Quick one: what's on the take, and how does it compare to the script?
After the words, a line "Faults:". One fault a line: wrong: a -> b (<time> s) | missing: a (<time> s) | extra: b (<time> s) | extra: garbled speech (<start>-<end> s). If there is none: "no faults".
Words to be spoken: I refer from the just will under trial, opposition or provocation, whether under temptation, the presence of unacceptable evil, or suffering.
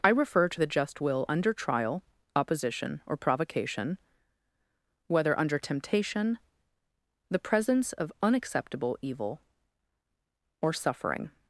I refer to the just will under trial, opposition or provocation, whether under temptation, the presence of unacceptable evil, or suffering.
Faults:
wrong: from -> to (0.5 s)